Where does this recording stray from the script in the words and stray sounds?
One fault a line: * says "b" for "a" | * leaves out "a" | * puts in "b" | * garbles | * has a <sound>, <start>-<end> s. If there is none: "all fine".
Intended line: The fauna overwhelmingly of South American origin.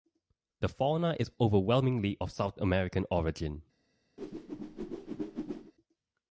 * puts in "is"
* has a whoosh, 4.2-5.7 s